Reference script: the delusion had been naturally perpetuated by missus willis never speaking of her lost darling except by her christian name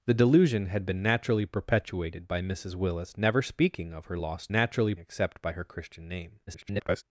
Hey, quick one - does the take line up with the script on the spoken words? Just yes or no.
no